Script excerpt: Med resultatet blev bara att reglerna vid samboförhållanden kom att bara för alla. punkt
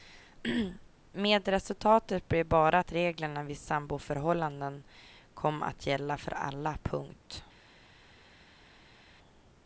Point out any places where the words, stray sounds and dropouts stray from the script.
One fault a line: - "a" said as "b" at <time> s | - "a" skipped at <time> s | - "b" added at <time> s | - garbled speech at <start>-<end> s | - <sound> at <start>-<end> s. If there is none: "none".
- "bara" said as "gälla" at 5.9 s